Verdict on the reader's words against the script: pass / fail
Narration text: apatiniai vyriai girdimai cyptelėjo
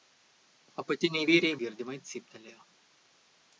pass